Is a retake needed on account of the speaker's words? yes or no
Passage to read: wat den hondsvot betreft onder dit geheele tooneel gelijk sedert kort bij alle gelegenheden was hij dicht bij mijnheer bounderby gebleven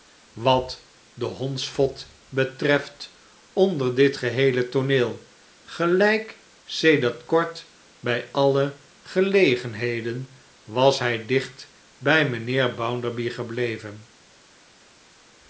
no